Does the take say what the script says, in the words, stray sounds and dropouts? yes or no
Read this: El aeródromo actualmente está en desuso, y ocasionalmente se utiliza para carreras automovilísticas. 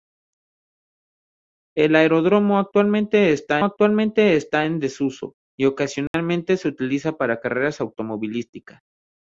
no